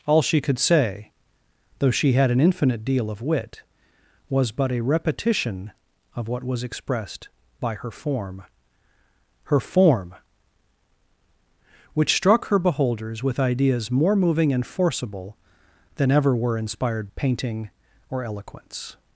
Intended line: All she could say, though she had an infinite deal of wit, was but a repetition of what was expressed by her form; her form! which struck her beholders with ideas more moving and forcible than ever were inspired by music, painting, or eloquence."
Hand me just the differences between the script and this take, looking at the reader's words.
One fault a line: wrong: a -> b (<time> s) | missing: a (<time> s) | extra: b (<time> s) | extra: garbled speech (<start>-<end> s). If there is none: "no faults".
missing: by music (17.1 s)